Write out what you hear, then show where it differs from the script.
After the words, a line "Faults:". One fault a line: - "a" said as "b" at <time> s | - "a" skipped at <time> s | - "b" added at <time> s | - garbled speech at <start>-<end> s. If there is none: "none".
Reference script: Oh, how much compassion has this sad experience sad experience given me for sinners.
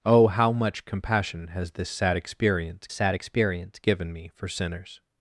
Oh, how much compassion has this sad experience sad experience given me for sinners.
Faults:
none